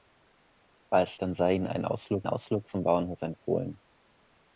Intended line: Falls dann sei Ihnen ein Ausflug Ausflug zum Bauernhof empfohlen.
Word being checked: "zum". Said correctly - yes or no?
yes